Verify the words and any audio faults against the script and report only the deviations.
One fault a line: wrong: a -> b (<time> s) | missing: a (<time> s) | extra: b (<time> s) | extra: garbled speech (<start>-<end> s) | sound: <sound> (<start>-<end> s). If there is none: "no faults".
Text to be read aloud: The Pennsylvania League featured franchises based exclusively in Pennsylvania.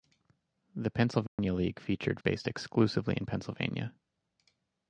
sound: dropout (1.3-1.4 s)
missing: franchises (2.2 s)